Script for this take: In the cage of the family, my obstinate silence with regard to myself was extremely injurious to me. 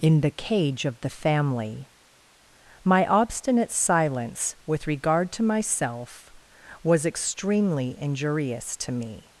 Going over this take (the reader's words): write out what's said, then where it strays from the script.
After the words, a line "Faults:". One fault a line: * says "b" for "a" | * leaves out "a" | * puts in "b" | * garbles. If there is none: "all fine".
In the cage of the family, my obstinate silence with regard to myself was extremely injurious to me.
Faults:
all fine